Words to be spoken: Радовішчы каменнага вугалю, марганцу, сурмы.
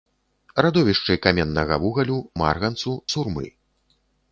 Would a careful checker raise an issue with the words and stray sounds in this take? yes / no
no